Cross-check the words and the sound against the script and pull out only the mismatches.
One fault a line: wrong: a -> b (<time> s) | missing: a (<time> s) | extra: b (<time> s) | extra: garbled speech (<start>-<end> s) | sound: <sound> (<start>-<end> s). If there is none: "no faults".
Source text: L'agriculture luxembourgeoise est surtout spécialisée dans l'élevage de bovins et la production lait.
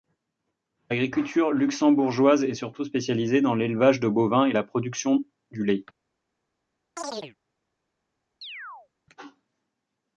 extra: du (5.5 s)
sound: chirp (7.0-7.4 s)
sound: chirp (8.4-8.9 s)